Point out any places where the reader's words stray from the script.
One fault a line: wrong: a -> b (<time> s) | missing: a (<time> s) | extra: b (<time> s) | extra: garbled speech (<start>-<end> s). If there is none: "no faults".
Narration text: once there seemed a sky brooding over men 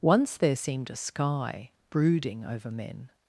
no faults